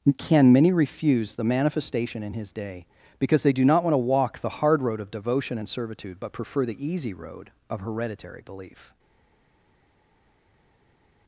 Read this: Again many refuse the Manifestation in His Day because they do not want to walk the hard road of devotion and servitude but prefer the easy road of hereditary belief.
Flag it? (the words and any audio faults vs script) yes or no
yes